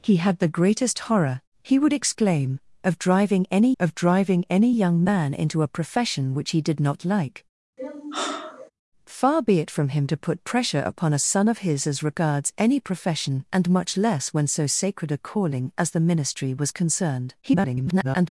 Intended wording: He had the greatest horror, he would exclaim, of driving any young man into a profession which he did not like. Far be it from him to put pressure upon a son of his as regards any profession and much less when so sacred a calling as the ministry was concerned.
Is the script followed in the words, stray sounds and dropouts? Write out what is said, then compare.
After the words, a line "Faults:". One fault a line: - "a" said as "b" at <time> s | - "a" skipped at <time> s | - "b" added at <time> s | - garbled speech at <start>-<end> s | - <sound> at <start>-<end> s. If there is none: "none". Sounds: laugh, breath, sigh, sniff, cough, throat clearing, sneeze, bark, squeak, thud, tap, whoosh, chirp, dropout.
He had the greatest horror, he would exclaim, of driving any of driving any young man into a profession which he did not like. Far be it from him to put pressure upon a son of his as regards any profession and much less when so sacred a calling as the ministry was concerned. [garbled]
Faults:
- "of driving any" added at 3.8 s
- sigh at 7.8-8.7 s
- garbled speech at 17.4-18.3 s